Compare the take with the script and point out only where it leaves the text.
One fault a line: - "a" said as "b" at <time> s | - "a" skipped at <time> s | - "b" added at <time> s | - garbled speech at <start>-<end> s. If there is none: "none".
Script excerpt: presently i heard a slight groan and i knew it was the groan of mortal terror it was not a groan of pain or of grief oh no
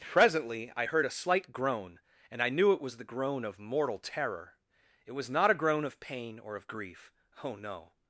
none